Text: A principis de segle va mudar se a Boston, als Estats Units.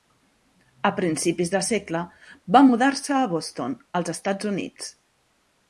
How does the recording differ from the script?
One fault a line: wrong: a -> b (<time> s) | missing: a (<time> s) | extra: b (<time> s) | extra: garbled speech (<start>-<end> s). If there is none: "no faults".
no faults